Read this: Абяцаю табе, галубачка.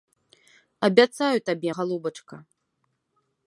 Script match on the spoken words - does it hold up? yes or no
yes